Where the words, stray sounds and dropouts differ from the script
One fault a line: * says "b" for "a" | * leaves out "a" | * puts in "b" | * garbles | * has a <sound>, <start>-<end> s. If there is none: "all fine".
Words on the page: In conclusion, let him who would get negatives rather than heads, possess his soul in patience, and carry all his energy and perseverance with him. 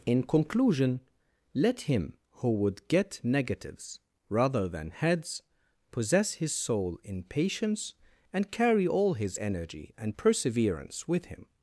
all fine